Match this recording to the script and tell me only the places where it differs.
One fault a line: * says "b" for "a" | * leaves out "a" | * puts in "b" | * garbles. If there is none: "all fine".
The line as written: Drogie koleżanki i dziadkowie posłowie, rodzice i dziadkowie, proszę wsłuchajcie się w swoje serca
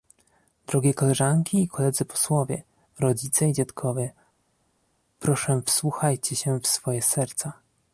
* says "koledzy" for "dziadkowie"